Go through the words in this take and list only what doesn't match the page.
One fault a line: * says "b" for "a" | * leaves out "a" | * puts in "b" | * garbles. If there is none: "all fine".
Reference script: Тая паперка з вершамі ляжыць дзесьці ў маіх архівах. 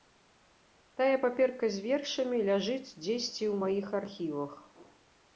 all fine